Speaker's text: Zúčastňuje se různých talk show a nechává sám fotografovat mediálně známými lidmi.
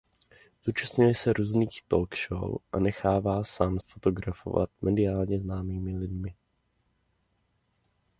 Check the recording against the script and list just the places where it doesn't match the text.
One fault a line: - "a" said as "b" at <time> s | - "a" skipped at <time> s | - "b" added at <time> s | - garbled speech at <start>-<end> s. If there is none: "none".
none